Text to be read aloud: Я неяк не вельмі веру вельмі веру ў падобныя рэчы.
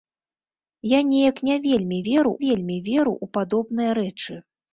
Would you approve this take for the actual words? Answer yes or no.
yes